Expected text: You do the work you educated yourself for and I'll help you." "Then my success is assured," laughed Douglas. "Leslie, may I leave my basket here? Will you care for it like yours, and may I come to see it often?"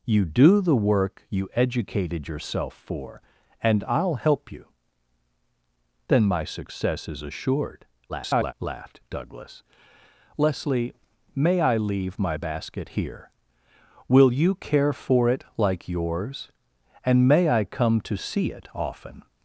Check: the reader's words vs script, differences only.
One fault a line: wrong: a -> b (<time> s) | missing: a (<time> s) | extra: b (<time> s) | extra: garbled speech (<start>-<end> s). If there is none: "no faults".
extra: garbled speech (8.1-8.5 s)